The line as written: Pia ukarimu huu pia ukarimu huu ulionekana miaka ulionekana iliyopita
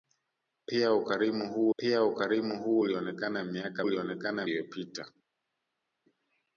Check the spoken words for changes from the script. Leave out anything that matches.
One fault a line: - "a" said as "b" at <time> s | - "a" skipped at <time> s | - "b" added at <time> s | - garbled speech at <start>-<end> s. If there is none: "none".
none